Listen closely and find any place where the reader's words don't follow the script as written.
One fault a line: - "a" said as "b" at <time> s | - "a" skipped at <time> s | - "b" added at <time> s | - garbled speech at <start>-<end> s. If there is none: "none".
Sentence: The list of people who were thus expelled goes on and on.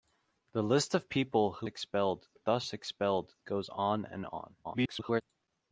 - "were" said as "expelled" at 1.7 s
- garbled speech at 4.6-5.2 s